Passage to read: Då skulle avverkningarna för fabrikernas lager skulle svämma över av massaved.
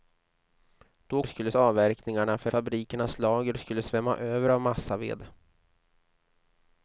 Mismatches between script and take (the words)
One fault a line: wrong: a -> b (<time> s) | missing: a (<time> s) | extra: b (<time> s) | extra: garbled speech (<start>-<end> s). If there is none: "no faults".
no faults